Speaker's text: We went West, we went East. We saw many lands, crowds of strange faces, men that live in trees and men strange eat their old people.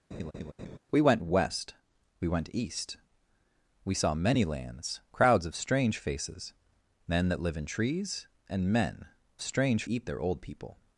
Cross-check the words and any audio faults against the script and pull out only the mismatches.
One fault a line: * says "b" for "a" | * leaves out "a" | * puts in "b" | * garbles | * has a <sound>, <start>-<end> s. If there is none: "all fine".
* has a laugh, 0.1-0.8 s